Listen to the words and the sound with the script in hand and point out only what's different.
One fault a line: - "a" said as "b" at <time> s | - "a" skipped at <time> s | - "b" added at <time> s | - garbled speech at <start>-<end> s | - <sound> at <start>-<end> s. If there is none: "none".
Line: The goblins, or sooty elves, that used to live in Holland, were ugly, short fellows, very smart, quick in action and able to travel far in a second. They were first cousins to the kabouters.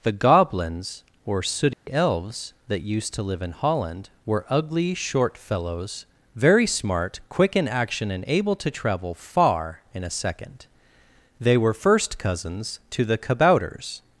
- dropout at 1.7-1.9 s